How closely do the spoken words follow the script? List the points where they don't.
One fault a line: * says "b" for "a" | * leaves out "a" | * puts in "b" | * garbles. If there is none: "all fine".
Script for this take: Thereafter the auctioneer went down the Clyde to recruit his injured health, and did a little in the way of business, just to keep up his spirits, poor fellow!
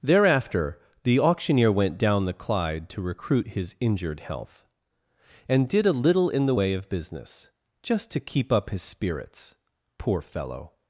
all fine